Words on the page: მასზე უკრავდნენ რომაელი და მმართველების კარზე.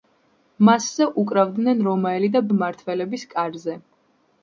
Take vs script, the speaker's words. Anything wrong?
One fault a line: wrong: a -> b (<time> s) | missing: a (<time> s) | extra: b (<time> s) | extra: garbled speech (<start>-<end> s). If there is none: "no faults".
no faults